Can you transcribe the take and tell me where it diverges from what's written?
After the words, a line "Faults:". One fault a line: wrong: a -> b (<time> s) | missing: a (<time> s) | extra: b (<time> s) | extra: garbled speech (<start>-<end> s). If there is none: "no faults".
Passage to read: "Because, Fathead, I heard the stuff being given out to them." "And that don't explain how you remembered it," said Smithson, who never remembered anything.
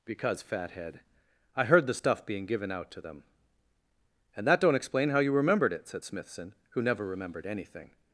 "Because, Fathead, I heard the stuff being given out to them." "And that don't explain how you remembered it," said Smithson, who never remembered anything.
Faults:
no faults